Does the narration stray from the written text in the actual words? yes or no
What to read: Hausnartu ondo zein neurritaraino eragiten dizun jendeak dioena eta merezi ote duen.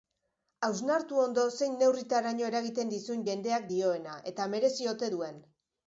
no